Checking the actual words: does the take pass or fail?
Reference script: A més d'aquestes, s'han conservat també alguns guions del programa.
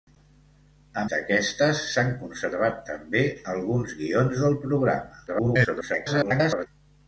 fail